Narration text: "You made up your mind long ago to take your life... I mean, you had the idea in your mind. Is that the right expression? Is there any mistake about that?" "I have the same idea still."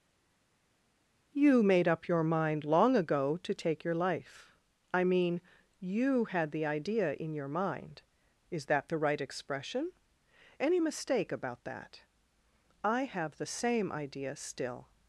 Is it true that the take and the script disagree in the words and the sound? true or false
true